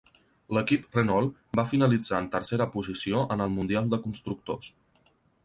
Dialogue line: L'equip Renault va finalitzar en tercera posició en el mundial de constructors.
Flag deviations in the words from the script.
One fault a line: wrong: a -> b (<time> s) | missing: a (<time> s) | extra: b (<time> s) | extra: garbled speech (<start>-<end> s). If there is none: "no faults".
no faults